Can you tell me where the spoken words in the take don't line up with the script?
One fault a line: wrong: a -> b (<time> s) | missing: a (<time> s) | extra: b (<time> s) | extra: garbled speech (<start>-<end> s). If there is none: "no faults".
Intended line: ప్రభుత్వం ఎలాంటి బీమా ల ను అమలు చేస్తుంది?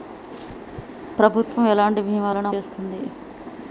missing: అమలు (2.5 s)